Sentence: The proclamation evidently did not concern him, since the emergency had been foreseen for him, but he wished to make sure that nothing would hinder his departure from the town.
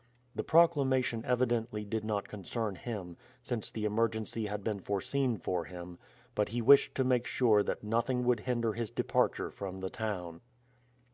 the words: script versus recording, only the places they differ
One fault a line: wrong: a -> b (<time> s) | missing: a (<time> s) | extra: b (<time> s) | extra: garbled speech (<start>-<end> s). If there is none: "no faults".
no faults